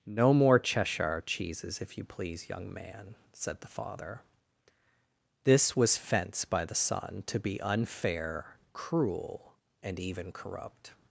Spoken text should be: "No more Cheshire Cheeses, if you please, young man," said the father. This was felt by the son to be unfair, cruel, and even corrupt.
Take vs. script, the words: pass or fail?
fail